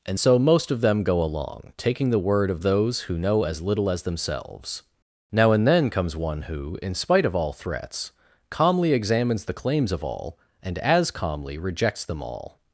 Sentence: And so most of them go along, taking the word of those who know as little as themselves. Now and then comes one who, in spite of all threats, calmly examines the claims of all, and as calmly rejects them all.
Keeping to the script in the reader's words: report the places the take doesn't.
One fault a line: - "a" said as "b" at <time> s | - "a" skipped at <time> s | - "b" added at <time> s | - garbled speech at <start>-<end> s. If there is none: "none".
none